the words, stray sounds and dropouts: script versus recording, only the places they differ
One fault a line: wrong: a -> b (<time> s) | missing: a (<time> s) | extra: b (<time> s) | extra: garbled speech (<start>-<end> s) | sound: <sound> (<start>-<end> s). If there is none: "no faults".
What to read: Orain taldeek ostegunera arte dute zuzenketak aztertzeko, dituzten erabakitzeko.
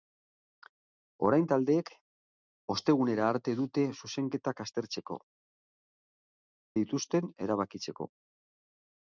no faults